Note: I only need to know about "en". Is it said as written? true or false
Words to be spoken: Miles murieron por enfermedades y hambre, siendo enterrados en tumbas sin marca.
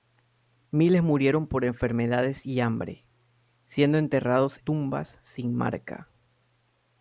false